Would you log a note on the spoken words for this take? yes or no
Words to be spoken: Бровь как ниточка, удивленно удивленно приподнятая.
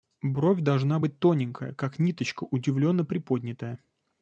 yes